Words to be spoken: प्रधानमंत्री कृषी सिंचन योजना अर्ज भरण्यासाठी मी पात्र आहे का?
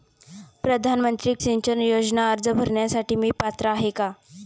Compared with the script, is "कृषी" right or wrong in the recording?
wrong